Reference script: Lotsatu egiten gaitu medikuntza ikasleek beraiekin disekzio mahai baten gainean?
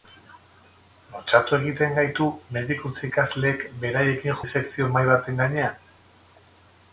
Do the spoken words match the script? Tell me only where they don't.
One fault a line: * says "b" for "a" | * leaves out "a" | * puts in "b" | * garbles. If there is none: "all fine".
all fine